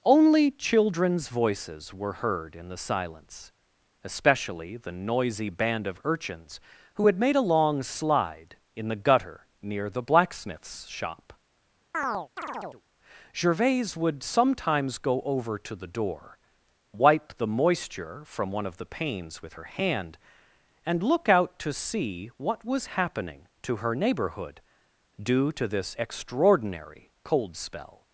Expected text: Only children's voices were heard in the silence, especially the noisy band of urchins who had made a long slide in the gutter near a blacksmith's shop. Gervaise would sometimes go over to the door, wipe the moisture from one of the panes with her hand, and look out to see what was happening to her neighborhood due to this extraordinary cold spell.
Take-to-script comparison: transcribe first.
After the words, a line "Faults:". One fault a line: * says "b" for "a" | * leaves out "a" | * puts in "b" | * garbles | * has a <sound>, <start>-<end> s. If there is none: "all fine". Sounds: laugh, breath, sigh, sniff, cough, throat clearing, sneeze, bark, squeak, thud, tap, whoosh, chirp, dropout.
Only children's voices were heard in the silence, especially the noisy band of urchins who had made a long slide in the gutter near the blacksmith's shop. Gervaise would sometimes go over to the door, wipe the moisture from one of the panes with her hand, and look out to see what was happening to her neighborhood due to this extraordinary cold spell.
Faults:
* says "the" for "a"
* has a chirp, 11.9-12.8 s